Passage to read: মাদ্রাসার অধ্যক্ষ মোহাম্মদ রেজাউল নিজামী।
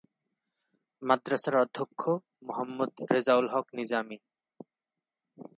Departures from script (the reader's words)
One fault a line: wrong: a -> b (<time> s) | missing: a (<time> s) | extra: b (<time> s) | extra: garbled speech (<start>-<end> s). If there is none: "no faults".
extra: হক (3.5 s)